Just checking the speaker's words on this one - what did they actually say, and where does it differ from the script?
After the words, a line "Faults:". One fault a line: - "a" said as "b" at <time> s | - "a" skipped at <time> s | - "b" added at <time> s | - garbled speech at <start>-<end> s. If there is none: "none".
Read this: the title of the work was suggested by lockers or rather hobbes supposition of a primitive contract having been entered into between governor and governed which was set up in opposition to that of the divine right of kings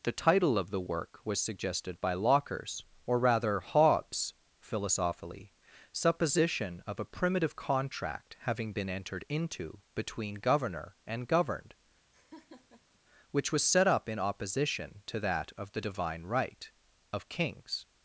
the title of the work was suggested by lockers or rather hobbes philosophically supposition of a primitive contract having been entered into between governor and governed which was set up in opposition to that of the divine right of kings
Faults:
- "philosophically" added at 4.6 s